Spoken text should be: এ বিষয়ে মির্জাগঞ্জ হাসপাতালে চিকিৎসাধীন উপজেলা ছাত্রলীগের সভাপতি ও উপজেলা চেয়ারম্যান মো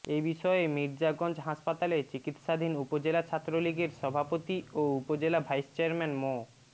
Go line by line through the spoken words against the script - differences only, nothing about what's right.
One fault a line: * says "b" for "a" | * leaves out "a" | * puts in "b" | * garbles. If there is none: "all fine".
* puts in "ভাইস"